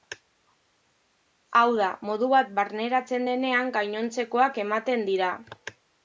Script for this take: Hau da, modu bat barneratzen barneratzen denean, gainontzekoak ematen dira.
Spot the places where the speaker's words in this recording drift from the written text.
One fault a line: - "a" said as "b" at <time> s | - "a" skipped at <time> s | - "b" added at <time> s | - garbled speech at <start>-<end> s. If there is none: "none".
- "barneratzen" skipped at 3.2 s